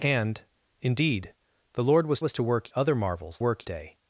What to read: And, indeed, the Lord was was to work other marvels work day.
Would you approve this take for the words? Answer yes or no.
yes